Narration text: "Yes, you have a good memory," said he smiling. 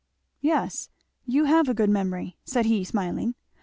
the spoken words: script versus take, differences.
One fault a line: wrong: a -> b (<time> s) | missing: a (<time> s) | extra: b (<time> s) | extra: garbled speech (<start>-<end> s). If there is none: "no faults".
no faults